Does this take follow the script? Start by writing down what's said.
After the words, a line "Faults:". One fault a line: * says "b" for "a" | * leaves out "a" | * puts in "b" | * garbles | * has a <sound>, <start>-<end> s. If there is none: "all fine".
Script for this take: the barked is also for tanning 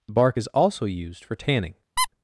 the bark is also used for tanning
Faults:
* says "bark" for "barked"
* puts in "used"
* has a squeak, 2.0-2.1 s